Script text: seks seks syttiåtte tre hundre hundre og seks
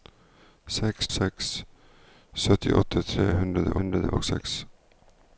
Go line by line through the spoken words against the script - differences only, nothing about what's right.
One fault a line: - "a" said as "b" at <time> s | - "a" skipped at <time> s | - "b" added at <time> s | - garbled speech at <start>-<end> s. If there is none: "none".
none